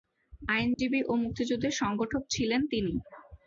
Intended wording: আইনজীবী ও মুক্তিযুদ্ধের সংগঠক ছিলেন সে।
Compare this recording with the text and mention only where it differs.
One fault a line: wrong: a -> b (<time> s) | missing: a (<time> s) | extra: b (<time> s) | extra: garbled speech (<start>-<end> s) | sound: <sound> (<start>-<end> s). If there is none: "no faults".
sound: dropout (0.7-0.8 s)
wrong: সে -> তিনি (2.7 s)